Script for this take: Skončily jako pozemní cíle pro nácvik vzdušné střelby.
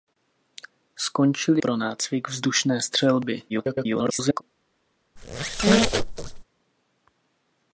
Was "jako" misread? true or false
true